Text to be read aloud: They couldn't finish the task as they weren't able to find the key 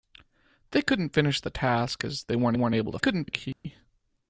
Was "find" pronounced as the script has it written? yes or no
no